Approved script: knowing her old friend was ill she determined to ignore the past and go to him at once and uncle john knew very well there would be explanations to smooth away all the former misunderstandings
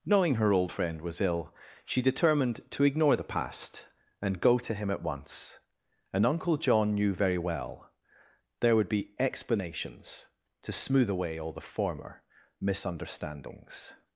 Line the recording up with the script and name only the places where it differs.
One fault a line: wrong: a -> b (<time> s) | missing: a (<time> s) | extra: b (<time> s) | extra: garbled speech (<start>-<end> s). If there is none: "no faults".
no faults